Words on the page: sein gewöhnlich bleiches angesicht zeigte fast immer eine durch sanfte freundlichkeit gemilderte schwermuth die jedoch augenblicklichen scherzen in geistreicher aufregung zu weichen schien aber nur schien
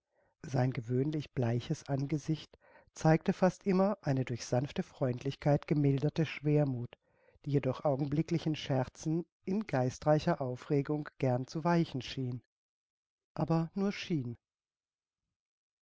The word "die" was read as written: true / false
true